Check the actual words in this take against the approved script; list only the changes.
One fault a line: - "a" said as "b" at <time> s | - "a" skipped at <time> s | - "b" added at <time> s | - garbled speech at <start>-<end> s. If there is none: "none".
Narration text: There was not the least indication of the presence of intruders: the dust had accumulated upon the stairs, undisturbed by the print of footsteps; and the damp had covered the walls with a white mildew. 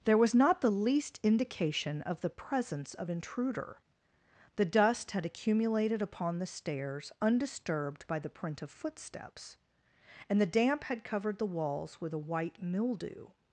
- "intruders" said as "intruder" at 3.1 s